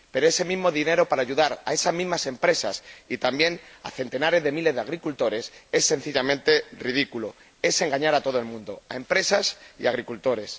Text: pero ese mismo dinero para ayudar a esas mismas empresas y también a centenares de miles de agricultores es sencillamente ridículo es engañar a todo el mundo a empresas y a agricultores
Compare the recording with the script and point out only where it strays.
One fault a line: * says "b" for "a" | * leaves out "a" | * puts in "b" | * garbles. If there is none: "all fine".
all fine